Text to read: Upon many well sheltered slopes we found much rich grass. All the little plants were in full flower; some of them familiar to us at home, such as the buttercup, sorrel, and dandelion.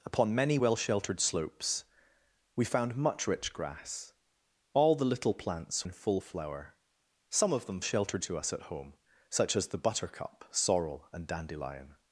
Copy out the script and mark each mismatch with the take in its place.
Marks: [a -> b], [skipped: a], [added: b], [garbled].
Upon many well sheltered slopes we found much rich grass. All the little plants [skipped: were] in full flower; some of them [familiar -> sheltered] to us at home, such as the buttercup, sorrel, and dandelion.